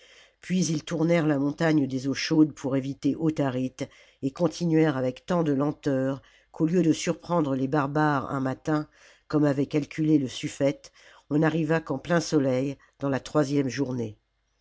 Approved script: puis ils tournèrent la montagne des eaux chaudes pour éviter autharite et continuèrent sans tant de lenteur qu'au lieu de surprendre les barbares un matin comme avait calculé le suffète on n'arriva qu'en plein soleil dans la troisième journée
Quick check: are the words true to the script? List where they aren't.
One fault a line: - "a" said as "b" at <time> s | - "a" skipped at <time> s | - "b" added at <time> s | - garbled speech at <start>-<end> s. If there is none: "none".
- "sans" said as "avec" at 5.0 s